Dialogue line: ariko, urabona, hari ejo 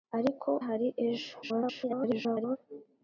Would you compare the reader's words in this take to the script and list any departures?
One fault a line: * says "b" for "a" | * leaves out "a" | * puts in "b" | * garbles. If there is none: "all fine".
* leaves out "urabona"
* garbles